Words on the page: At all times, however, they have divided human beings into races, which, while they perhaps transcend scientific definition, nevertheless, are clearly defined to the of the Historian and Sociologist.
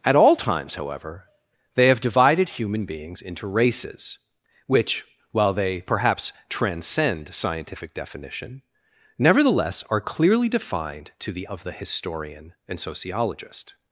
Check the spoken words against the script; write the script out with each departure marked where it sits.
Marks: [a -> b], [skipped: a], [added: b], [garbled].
At all times, however, they have divided human beings into races, which, while they perhaps transcend scientific definition, nevertheless, are clearly defined to the of the Historian and Sociologist.